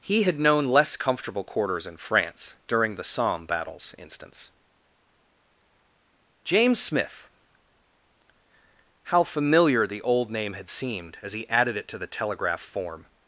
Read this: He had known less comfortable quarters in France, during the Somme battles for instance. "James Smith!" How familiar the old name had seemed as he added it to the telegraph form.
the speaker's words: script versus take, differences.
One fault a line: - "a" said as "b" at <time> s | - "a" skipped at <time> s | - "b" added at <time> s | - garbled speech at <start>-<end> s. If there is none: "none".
- "for" skipped at 3.9 s